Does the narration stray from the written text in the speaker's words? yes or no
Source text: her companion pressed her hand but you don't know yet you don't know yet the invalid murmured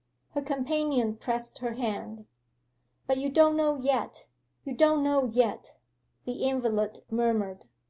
no